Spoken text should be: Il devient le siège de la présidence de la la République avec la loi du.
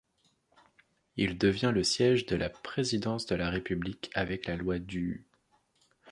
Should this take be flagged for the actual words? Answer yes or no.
yes